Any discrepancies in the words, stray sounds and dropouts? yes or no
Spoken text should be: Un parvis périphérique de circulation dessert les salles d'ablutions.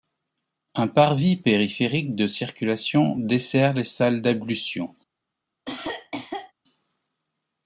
yes